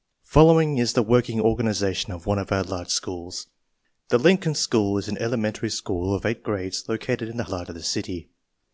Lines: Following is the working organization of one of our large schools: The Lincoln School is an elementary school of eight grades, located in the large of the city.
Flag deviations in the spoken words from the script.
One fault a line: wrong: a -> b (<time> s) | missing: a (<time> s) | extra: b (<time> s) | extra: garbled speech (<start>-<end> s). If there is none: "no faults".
no faults